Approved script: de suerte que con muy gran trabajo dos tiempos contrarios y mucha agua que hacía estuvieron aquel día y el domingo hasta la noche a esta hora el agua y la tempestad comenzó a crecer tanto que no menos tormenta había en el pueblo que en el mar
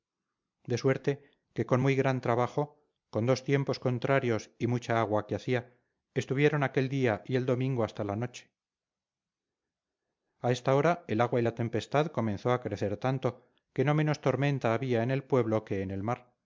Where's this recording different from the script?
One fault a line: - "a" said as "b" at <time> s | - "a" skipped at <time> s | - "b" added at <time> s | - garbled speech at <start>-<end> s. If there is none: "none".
- "con" added at 3.1 s